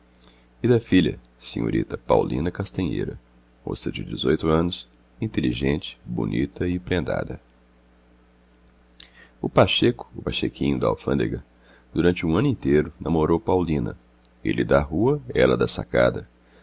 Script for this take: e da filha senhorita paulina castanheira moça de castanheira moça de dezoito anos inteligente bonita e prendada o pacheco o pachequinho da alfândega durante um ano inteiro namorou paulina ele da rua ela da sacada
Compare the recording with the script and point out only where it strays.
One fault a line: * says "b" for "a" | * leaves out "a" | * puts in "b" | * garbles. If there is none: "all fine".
* leaves out "castanheira moça de"